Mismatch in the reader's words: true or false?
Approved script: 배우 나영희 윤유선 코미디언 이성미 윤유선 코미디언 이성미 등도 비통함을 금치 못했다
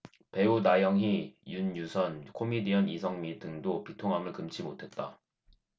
true